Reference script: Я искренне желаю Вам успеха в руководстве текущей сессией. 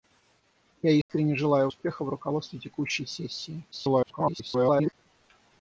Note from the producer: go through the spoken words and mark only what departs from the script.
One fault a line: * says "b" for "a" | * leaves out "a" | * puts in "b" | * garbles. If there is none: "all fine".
* leaves out "Вам"
* garbles